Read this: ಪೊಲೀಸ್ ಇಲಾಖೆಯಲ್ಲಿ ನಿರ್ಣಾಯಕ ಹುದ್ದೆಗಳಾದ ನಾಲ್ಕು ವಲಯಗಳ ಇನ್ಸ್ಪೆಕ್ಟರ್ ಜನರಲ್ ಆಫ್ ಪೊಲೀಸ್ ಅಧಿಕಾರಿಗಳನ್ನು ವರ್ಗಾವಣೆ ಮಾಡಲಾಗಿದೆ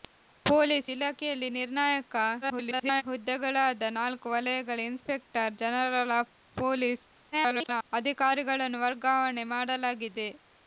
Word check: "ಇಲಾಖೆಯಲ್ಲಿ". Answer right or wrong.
right